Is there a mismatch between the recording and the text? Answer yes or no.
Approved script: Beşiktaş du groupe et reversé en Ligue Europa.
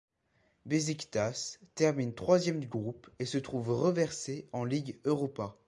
yes